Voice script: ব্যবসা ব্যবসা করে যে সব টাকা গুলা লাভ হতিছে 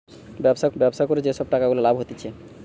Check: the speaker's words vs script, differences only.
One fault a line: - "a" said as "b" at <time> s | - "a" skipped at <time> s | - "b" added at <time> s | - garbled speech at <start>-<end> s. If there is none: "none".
none